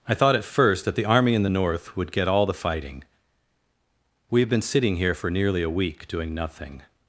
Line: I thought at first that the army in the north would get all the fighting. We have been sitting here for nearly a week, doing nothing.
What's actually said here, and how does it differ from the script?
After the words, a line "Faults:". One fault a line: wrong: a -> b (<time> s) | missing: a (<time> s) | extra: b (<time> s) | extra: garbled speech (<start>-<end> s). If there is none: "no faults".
I thought at first that the army in the north would get all the fighting. We have been sitting here for nearly a week, doing nothing.
Faults:
no faults